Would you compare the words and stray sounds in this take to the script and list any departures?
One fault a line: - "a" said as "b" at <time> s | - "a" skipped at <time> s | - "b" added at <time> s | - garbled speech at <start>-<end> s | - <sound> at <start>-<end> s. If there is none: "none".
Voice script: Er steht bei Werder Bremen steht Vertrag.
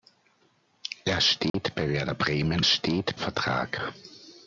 - dropout at 1.5-1.5 s